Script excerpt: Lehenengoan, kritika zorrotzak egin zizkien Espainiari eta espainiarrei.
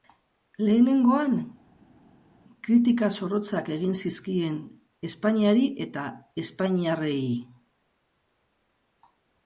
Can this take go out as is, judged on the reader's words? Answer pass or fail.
pass